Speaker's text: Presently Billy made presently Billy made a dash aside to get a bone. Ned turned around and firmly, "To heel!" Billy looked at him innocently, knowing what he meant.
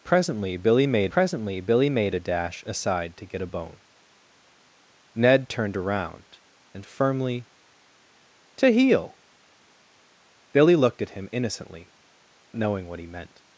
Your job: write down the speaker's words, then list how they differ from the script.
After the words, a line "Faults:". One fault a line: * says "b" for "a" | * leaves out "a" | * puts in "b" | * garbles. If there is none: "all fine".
Presently Billy made presently Billy made a dash aside to get a bone. Ned turned around and firmly, "To heel!" Billy looked at him innocently, knowing what he meant.
Faults:
all fine